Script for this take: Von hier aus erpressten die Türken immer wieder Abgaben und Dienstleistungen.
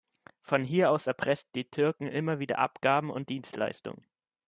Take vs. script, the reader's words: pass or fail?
pass